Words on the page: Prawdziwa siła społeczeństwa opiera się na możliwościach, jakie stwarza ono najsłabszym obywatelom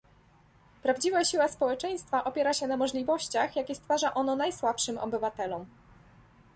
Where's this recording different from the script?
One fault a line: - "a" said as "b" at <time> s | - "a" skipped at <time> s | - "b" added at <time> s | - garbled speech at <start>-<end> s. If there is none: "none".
none